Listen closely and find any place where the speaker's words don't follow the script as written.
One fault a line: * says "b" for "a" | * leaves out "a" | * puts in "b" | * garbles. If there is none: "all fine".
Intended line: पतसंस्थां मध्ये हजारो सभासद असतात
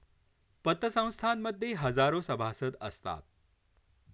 all fine